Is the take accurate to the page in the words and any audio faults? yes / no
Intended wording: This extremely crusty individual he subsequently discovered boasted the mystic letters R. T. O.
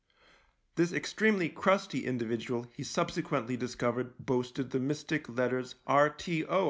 yes